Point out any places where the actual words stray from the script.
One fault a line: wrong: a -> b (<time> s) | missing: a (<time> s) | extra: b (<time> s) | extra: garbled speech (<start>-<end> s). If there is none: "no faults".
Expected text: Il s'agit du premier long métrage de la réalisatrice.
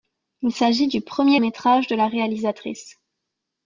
missing: long (1.4 s)